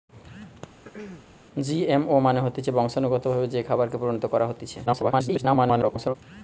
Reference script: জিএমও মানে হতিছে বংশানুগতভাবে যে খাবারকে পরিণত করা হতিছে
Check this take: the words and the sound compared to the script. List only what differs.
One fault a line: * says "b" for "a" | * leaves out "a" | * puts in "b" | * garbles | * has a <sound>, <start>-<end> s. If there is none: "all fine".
* has a throat clearing, 0.8-1.3 s
* garbles